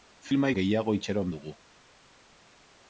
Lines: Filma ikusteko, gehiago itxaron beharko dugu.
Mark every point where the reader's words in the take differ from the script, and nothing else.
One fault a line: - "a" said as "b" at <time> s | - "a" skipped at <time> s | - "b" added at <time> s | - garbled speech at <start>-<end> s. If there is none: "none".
- "ikusteko" skipped at 0.5 s
- "beharko" skipped at 1.3 s